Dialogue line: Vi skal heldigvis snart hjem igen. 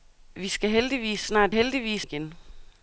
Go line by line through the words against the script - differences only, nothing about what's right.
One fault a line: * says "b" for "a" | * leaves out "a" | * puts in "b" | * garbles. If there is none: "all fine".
* says "heldigvis" for "hjem"